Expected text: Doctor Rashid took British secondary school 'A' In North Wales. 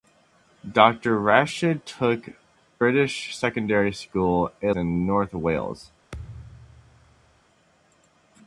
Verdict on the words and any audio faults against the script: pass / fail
fail